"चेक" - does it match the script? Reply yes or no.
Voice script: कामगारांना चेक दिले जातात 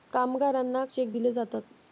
yes